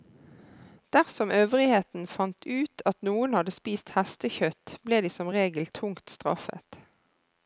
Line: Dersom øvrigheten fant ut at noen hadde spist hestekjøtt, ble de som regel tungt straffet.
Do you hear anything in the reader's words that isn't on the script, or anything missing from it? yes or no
no